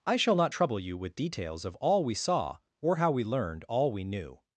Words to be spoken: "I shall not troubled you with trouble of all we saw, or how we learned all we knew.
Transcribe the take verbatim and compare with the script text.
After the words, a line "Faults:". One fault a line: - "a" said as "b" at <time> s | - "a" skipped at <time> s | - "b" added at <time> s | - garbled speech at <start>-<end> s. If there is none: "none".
"I shall not trouble you with details of all we saw, or how we learned all we knew.
Faults:
- "troubled" said as "trouble" at 0.5 s
- "trouble" said as "details" at 1.2 s